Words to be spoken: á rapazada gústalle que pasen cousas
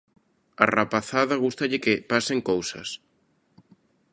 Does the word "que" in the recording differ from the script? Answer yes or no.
no